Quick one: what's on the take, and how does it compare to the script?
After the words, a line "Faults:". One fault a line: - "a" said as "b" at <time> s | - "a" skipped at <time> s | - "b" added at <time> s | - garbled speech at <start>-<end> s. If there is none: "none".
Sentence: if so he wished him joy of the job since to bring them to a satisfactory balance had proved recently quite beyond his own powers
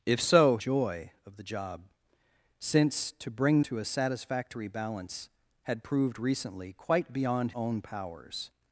if so joy of the job since to bring to a satisfactory balance had proved recently quite beyond own powers
Faults:
- "he wished him" skipped at 0.6 s
- "them" skipped at 3.6 s
- "his" skipped at 7.5 s